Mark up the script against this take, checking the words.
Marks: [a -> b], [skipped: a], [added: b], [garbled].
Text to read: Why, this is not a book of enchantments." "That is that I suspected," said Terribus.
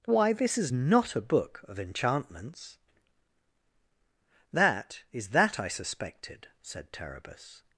Why, this is not a book of enchantments." "That is that I suspected," said Terribus.